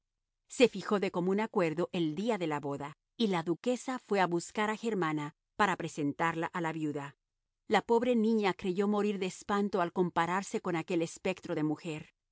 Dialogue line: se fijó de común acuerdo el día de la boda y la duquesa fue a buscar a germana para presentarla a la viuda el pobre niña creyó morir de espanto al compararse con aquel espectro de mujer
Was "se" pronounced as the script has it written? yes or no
yes